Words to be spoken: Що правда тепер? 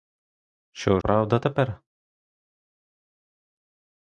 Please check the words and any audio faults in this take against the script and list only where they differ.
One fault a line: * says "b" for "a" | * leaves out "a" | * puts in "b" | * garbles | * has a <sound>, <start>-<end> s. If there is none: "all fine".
all fine